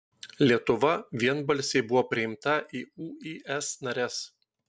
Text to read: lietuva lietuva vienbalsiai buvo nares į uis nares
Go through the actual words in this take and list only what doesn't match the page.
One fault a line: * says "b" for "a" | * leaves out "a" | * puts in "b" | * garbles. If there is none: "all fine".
* leaves out "lietuva"
* says "priimta" for "nares"